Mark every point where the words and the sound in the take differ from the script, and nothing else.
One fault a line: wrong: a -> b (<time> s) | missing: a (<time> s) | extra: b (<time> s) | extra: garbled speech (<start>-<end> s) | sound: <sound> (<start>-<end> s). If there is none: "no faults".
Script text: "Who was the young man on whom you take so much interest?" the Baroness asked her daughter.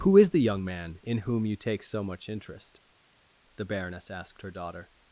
wrong: was -> is (0.2 s)
wrong: on -> in (1.0 s)